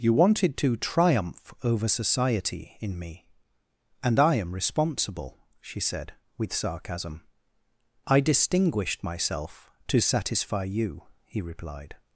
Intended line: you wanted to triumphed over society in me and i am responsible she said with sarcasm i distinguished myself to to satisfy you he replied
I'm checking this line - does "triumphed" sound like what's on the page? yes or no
no